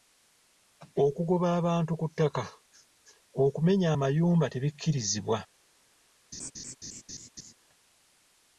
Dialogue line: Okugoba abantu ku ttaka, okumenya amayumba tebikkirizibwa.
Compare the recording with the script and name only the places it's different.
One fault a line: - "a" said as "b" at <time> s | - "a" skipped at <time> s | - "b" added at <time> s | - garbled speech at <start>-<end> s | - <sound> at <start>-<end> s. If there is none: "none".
- laugh at 6.3-7.5 s